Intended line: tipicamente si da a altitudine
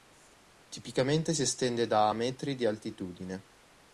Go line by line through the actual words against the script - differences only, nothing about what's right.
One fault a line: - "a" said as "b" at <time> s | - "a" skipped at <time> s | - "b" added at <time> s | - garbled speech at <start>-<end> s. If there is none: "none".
- "estende" added at 1.4 s
- "metri di" added at 2.1 s